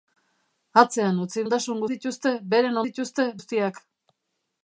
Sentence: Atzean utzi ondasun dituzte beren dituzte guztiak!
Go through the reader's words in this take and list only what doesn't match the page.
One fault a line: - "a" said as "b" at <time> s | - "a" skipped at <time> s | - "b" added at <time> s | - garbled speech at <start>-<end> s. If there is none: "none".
none